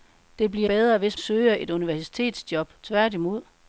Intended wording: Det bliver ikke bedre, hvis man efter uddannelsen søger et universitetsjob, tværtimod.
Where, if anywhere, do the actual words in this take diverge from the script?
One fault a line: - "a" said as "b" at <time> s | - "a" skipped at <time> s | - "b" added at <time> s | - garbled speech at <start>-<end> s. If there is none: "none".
- "ikke" skipped at 0.7 s
- "man efter uddannelsen" skipped at 1.2 s